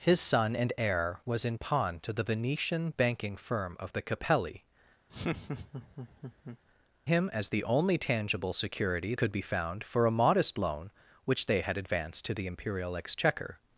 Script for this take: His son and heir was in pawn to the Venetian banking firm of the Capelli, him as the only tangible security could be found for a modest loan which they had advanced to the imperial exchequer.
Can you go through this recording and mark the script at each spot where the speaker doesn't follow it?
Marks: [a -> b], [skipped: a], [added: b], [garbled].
His son and heir was in pawn to the Venetian banking firm of the Capelli, him as the only tangible security could be found for a modest loan which they had advanced to the imperial exchequer.